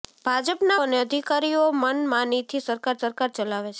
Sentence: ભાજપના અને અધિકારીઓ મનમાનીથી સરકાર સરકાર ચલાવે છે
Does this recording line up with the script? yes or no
yes